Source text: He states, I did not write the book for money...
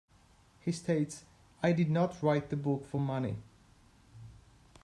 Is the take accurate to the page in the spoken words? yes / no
yes